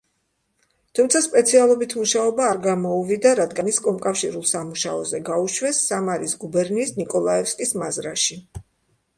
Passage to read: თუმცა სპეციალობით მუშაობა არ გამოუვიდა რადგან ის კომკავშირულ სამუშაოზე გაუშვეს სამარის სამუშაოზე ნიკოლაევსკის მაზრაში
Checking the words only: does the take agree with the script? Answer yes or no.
no